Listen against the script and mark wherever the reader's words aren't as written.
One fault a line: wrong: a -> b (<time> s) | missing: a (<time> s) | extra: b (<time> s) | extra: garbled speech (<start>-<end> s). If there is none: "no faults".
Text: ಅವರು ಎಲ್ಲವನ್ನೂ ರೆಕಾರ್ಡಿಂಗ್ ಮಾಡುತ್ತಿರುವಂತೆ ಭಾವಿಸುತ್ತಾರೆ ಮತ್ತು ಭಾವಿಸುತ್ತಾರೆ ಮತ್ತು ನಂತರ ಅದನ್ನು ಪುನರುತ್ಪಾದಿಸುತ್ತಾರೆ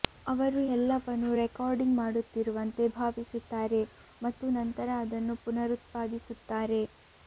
missing: ಭಾವಿಸುತ್ತಾರೆ ಮತ್ತು (4.5 s)